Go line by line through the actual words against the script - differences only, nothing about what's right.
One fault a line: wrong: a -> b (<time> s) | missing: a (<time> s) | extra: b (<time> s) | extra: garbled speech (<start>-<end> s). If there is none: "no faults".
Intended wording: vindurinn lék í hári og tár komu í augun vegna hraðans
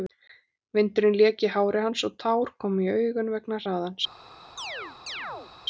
extra: hans (1.9 s)